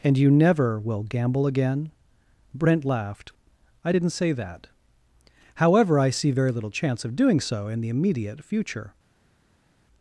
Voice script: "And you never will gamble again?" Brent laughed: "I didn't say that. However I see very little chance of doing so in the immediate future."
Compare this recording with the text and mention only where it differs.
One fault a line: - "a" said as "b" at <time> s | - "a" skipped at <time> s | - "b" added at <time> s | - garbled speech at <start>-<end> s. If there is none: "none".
none